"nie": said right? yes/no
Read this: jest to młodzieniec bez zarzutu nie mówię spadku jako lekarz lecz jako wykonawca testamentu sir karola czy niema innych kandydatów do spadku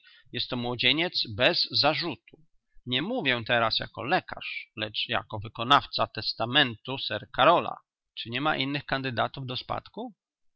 yes